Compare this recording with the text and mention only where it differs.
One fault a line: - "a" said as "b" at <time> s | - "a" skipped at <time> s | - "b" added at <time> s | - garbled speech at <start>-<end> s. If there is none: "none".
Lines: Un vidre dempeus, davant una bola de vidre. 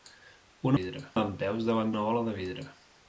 none